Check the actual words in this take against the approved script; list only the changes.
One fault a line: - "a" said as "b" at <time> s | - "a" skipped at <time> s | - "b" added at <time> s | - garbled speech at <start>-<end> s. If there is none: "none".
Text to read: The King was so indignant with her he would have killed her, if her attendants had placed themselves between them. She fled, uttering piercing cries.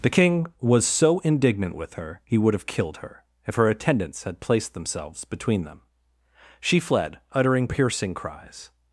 none